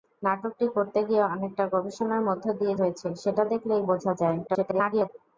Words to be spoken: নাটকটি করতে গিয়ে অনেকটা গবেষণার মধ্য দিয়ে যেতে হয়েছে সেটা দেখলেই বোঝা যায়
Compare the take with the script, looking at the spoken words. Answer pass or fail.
fail